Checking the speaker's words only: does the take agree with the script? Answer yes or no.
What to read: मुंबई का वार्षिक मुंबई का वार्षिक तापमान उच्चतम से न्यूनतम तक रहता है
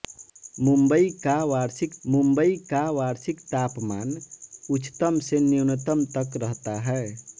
yes